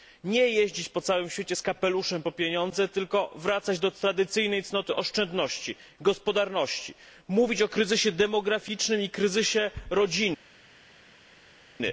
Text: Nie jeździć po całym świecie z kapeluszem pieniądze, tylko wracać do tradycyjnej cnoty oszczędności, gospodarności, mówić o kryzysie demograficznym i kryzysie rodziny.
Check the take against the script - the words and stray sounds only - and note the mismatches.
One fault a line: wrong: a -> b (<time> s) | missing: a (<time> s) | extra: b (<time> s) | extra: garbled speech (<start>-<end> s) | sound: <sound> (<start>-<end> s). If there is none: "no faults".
extra: po (2.2 s)